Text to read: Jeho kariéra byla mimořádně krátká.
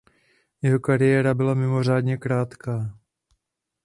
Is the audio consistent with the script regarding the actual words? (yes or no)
yes